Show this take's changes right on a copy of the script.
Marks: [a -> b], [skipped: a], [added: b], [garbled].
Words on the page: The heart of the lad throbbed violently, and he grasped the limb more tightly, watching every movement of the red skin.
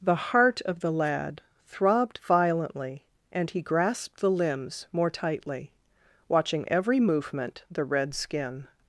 The heart of the lad throbbed violently, and he grasped the [limb -> limbs] more tightly, watching every movement [skipped: of] the red skin.